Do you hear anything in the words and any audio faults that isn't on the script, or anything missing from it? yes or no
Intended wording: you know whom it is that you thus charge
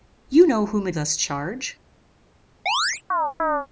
yes